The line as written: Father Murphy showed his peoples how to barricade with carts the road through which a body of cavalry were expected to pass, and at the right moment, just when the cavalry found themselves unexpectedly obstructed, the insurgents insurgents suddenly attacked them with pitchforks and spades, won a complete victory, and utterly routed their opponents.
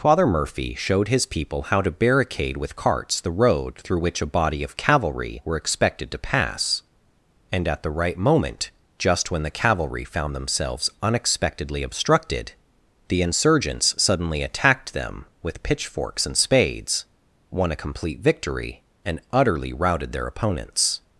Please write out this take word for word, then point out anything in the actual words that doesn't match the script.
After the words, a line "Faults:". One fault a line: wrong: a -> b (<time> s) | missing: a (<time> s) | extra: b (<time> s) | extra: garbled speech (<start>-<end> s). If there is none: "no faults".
Father Murphy showed his people how to barricade with carts the road through which a body of cavalry were expected to pass, and at the right moment, just when the cavalry found themselves unexpectedly obstructed, the insurgents suddenly attacked them with pitchforks and spades, won a complete victory, and utterly routed their opponents.
Faults:
wrong: peoples -> people (1.3 s)
missing: insurgents (14.0 s)